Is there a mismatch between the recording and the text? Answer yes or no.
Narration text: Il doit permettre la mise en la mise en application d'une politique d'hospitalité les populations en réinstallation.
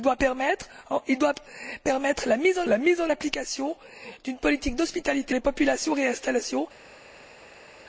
no